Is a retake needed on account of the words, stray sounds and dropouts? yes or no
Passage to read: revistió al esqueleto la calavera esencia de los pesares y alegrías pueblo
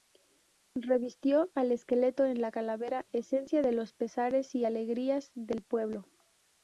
yes